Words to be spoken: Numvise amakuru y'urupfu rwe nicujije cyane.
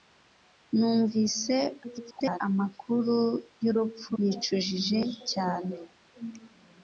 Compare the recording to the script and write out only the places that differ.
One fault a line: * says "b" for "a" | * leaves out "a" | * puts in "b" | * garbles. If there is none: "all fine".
* garbles
* leaves out "rwe"